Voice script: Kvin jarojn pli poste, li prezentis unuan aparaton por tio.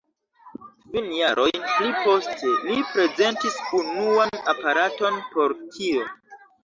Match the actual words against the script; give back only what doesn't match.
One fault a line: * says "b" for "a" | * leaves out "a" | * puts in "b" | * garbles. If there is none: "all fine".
all fine